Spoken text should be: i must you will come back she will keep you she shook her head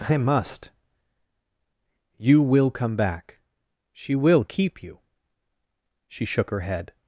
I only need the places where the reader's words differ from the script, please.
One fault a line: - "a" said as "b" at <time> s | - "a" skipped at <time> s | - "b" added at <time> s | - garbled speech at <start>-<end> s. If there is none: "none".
none